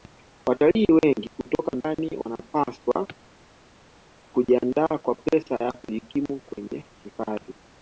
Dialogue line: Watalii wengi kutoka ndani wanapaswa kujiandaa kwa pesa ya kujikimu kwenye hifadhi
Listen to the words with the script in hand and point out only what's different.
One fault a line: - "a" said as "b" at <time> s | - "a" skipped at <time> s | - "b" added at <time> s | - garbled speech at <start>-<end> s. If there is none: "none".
none